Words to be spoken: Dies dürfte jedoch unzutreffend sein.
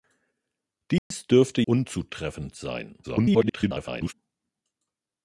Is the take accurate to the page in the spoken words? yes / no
no